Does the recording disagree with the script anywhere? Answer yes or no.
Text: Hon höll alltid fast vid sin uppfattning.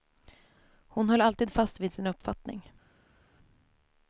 no